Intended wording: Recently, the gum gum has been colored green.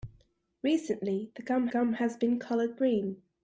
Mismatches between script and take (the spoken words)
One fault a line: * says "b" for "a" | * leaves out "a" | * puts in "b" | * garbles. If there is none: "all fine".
all fine